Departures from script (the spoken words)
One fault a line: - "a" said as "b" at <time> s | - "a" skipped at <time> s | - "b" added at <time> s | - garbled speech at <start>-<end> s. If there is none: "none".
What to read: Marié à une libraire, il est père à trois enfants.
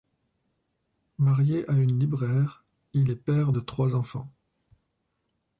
- "à" said as "de" at 3.5 s